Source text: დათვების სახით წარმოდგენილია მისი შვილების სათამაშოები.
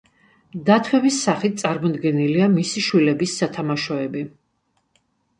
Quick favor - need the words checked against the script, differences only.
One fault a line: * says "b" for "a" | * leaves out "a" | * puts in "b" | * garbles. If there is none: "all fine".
all fine